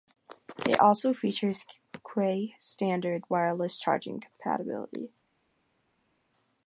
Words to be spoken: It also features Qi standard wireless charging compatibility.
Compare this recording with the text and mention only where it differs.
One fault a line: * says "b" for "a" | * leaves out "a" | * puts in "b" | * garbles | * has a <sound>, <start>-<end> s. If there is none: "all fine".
all fine